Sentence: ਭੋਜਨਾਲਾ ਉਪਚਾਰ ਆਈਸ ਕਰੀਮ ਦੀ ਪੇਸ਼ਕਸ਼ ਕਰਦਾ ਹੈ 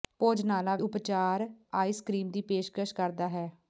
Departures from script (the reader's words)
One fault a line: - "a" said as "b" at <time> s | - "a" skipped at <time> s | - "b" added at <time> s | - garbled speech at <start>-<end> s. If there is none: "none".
none